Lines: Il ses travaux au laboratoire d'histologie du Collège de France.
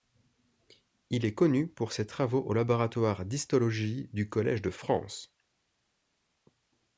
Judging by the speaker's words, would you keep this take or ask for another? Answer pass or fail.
fail